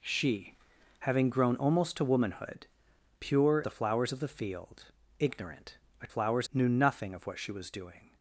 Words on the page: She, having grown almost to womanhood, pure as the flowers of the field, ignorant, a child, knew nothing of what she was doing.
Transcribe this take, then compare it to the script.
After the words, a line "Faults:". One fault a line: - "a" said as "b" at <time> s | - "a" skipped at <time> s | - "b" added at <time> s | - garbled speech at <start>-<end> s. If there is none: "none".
She, having grown almost to womanhood, pure the flowers of the field, ignorant, a flowers, knew nothing of what she was doing.
Faults:
- "as" skipped at 3.6 s
- "child" said as "flowers" at 6.1 s